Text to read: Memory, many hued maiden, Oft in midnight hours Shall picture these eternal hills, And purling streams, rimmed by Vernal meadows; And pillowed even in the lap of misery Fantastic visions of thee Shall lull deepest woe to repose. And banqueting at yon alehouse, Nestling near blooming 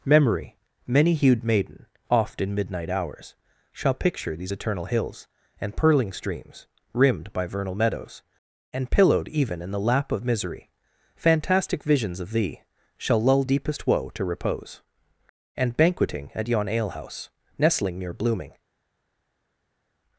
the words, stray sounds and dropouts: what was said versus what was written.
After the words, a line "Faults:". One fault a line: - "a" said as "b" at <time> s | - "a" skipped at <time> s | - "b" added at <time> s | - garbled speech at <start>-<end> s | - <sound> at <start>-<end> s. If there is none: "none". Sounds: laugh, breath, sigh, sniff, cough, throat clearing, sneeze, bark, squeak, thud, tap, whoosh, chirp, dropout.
Memory, many hued maiden, Oft in midnight hours Shall picture these eternal hills, And purling streams, rimmed by Vernal meadows; And pillowed even in the lap of misery Fantastic visions of thee Shall lull deepest woe to repose. And banqueting at yon alehouse, Nestling near blooming
Faults:
none